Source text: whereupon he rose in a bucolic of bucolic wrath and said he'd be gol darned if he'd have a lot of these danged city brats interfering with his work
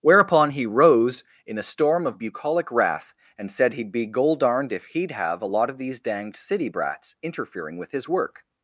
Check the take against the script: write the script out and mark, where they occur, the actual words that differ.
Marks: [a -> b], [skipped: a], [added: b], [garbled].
whereupon he rose in a [bucolic -> storm] of bucolic wrath and said he'd be gol darned if he'd have a lot of these danged city brats interfering with his work